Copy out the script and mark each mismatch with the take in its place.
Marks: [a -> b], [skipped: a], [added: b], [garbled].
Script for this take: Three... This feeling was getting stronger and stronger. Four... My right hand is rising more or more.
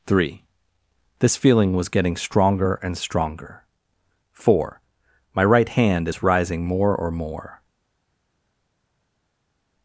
Three... This feeling was getting stronger and stronger. Four... My right hand is rising more or more.